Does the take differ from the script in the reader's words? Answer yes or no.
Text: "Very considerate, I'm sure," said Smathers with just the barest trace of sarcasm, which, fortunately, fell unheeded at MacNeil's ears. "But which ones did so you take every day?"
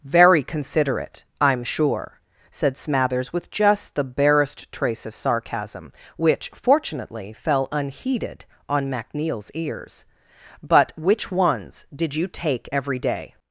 yes